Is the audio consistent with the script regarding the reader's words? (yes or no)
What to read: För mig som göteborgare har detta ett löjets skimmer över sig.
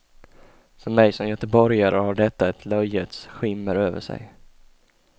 yes